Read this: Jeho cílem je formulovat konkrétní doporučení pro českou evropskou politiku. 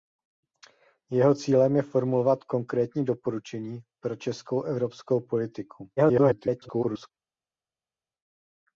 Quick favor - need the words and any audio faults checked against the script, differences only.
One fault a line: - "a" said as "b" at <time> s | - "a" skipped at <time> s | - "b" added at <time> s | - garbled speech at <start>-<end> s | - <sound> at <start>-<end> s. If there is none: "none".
- garbled speech at 6.0-7.1 s